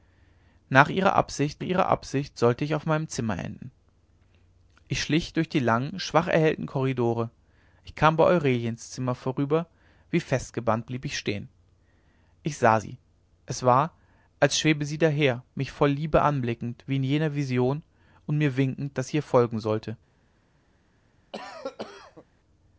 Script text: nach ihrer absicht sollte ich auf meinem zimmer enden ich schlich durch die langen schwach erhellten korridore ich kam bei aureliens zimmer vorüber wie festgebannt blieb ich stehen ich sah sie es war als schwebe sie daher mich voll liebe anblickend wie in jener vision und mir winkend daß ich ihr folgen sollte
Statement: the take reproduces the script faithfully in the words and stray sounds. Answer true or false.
false